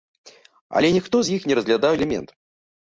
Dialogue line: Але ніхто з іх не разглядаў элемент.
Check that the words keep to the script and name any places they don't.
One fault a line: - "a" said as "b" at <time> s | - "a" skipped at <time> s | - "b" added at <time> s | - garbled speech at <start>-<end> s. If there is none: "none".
none